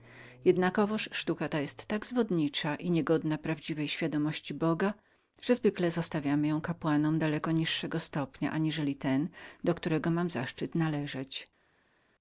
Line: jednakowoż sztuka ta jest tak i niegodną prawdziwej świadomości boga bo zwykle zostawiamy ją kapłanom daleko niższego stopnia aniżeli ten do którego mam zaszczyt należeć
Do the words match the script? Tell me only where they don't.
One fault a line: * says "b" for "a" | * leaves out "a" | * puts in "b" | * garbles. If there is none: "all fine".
* puts in "zwodniczą"
* says "że" for "bo"